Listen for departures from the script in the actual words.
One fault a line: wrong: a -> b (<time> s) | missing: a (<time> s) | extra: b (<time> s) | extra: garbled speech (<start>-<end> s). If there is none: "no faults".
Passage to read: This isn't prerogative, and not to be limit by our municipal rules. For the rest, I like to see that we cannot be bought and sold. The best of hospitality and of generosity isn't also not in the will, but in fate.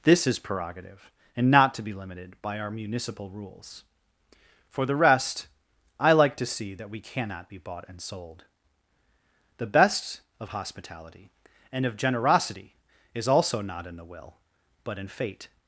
wrong: isn't -> is (0.2 s)
wrong: limit -> limited (1.9 s)
wrong: isn't -> is (13.1 s)